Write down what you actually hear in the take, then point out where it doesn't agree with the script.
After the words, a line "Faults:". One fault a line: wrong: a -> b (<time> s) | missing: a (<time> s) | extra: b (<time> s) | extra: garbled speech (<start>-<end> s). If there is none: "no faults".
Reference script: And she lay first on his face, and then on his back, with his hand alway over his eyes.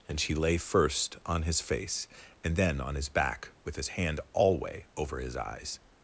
And she lay first on his face, and then on his back, with his hand alway over his eyes.
Faults:
no faults